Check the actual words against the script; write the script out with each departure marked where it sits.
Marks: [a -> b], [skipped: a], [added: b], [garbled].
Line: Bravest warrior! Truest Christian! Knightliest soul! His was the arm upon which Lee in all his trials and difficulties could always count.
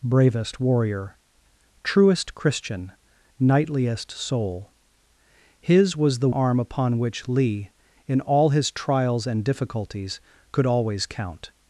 Bravest warrior! Truest Christian! Knightliest soul! His was the arm upon which Lee in all his trials and difficulties could always count.